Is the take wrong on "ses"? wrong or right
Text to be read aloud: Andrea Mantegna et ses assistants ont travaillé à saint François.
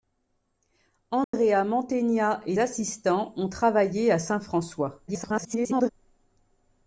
wrong